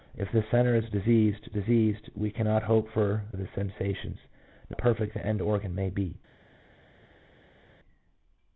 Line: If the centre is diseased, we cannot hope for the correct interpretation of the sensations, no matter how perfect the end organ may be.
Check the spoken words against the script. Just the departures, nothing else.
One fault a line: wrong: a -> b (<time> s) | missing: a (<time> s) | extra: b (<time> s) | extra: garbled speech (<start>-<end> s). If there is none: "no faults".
extra: diseased (1.5 s)
missing: the correct interpretation (3.2 s)
missing: matter how (4.8 s)